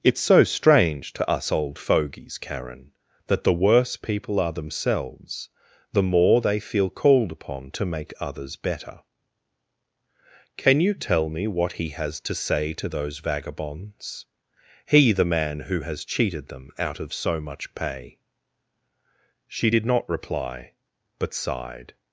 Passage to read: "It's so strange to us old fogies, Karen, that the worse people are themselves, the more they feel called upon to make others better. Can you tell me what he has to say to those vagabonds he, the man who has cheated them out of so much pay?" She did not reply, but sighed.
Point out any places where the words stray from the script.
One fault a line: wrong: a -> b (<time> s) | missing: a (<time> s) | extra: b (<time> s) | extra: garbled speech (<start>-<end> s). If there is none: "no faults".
no faults